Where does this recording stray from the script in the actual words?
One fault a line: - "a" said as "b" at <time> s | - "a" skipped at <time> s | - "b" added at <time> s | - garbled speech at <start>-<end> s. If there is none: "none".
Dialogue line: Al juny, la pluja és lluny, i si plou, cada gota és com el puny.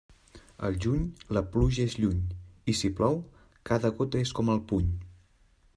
none